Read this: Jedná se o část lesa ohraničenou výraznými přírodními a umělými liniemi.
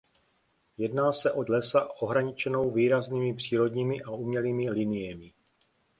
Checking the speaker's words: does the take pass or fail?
fail